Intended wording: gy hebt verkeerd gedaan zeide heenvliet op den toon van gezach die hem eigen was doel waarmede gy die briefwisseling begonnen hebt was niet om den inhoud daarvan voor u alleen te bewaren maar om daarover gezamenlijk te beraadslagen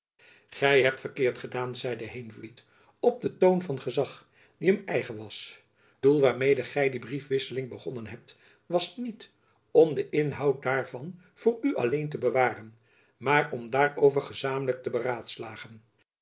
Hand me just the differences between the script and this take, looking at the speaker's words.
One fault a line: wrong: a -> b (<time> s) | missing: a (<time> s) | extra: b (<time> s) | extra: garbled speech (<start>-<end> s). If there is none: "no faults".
no faults